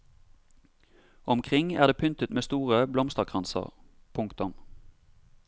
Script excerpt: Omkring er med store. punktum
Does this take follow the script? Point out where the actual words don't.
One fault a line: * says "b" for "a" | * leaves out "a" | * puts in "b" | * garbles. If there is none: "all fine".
* puts in "det pyntet"
* puts in "blomsterkranser"